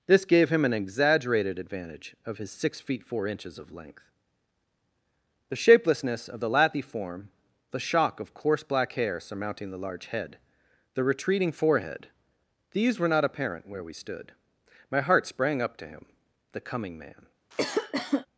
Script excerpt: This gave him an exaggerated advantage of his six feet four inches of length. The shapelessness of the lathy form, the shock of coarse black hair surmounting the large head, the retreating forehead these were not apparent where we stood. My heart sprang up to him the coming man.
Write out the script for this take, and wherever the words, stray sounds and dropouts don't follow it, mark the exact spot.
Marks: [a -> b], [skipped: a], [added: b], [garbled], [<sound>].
This gave him an exaggerated advantage of his six feet four inches of length. The shapelessness of the lathy form, the shock of coarse black hair surmounting the large head, the retreating forehead these were not apparent where we stood. My heart sprang up to him the coming man. [cough]